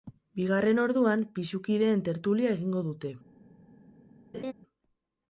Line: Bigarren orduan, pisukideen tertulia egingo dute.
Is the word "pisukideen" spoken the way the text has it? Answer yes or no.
yes